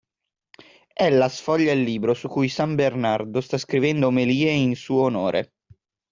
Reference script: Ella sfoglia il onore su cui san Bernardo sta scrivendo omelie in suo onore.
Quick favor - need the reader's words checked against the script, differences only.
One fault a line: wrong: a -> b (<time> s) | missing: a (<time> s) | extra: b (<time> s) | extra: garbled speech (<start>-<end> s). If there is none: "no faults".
wrong: onore -> libro (1.8 s)